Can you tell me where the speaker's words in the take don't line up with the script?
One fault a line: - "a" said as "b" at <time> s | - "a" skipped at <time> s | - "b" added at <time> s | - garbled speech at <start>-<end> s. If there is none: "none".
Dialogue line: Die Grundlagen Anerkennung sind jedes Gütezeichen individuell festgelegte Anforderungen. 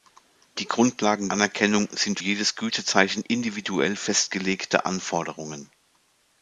none